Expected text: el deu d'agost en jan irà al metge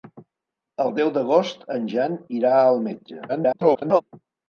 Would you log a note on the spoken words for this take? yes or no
yes